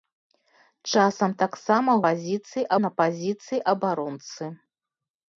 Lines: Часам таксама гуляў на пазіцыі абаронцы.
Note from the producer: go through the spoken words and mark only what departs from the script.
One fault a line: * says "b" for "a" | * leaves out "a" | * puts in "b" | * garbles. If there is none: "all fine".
* says "пазіцыі" for "гуляў"